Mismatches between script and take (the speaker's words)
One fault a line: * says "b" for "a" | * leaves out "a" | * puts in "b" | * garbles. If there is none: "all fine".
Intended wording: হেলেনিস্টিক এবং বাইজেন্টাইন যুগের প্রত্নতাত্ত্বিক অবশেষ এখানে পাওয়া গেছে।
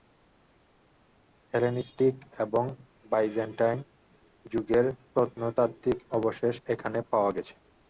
all fine